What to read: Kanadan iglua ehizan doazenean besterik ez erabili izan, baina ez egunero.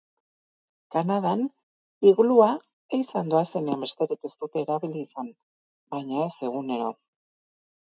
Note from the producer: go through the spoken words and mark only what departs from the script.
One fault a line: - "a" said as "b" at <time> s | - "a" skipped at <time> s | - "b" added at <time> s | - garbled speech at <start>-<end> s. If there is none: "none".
- "dute" added at 4.4 s